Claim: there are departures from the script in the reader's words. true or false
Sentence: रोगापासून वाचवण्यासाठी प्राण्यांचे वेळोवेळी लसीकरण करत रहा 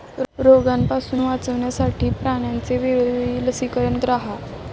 true